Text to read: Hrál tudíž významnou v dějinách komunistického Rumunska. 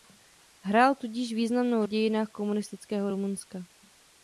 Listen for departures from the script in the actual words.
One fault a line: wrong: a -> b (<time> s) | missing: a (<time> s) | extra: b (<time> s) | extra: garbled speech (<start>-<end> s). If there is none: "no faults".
no faults